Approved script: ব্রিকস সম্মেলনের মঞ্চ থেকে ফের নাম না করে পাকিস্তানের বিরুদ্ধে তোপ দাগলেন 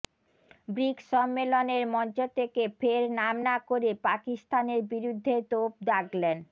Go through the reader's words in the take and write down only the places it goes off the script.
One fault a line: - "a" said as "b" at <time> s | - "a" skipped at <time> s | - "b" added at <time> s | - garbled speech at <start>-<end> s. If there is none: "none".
none